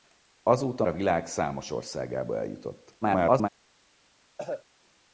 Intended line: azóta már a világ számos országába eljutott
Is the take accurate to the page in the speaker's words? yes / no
no